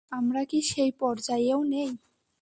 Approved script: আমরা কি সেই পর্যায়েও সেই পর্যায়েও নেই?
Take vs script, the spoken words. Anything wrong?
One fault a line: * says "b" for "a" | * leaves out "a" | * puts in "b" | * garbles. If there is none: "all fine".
* leaves out "সেই পর্যায়েও"